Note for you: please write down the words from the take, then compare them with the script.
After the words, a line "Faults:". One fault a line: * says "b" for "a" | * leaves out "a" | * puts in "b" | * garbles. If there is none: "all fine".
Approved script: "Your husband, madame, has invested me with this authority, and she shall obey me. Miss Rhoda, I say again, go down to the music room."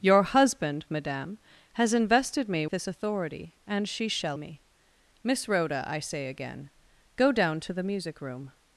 "Your husband, madame, has invested me this authority, and she shall me. Miss Rhoda, I say again, go down to the music room."
Faults:
* leaves out "with"
* leaves out "obey"